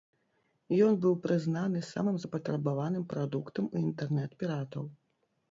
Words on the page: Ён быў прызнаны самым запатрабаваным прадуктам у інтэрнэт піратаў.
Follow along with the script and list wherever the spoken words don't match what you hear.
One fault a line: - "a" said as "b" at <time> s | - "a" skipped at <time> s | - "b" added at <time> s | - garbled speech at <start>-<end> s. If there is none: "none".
none